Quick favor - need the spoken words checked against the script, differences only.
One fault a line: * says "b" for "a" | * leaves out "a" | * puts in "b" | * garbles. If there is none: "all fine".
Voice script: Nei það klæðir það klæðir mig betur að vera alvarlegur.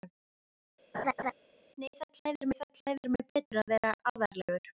all fine